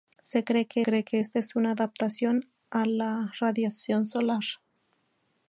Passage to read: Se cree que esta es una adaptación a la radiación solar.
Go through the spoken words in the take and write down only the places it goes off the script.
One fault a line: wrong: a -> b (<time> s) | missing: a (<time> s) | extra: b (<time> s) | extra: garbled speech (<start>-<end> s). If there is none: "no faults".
extra: cree que (0.8 s)